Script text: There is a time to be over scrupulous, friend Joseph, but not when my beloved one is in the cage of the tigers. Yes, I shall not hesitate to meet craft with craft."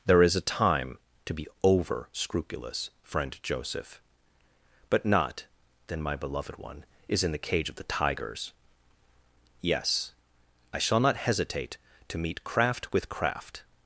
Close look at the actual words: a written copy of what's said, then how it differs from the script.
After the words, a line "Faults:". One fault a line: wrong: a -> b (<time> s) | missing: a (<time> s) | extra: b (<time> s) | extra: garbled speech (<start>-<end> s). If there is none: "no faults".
There is a time to be over scrupulous, friend Joseph, but not then my beloved one is in the cage of the tigers. Yes, I shall not hesitate to meet craft with craft."
Faults:
wrong: when -> then (5.9 s)